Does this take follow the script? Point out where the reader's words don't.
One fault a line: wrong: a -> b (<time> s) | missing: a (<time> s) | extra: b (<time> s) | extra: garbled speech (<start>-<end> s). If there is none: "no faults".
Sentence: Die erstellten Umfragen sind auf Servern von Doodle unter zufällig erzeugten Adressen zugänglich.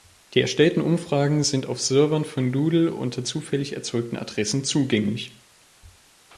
no faults